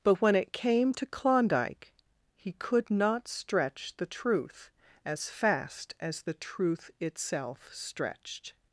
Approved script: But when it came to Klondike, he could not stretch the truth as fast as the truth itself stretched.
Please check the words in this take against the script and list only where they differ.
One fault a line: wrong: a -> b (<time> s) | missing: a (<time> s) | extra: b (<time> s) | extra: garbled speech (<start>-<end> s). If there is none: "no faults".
no faults